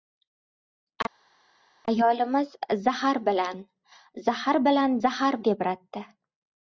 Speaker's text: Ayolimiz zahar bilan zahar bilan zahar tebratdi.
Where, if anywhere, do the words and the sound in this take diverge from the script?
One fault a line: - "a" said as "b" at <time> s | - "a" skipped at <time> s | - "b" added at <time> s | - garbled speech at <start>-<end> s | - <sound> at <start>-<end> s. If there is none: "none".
none